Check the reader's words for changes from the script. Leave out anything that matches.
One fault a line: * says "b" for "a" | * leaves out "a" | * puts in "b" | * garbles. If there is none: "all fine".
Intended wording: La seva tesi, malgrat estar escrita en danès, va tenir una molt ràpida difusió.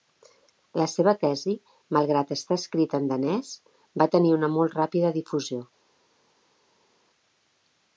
all fine